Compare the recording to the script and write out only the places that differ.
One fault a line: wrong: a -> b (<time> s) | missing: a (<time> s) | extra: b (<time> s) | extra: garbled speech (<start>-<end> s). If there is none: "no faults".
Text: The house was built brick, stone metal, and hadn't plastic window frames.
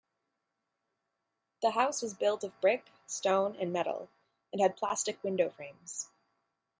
extra: of (2.4 s)
extra: and (3.5 s)
wrong: hadn't -> had (4.6 s)